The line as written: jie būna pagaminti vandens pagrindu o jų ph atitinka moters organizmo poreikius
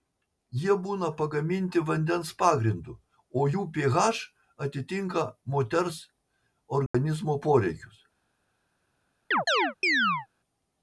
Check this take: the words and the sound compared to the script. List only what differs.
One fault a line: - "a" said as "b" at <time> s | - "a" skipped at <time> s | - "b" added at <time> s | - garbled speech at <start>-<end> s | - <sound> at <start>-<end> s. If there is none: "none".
- dropout at 6.9-6.9 s
- chirp at 9.3-10.3 s